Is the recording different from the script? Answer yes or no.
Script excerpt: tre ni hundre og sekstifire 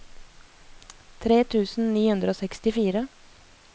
yes